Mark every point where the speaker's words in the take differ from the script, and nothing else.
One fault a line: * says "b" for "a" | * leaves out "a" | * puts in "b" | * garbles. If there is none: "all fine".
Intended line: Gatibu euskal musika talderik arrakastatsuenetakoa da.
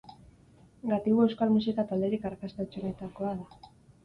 all fine